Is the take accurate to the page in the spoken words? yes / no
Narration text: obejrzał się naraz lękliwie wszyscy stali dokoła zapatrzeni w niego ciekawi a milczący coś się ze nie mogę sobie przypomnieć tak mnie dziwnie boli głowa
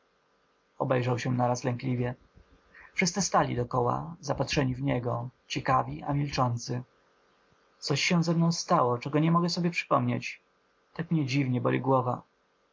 no